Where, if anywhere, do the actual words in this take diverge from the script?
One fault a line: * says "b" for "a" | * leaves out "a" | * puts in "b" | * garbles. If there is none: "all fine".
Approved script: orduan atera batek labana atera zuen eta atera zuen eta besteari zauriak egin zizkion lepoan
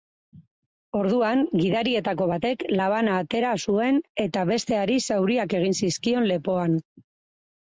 * says "gidarietako" for "atera"
* leaves out "atera zuen eta"